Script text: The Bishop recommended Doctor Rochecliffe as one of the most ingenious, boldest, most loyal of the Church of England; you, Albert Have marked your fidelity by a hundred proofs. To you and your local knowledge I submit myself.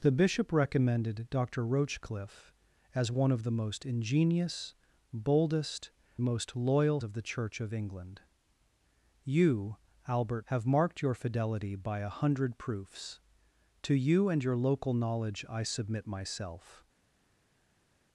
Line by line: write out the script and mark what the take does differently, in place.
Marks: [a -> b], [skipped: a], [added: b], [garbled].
The Bishop recommended Doctor Rochecliffe as one of the most ingenious, boldest, most loyal of the Church of England; you, Albert Have marked your fidelity by a hundred proofs. To you and your local knowledge I submit myself.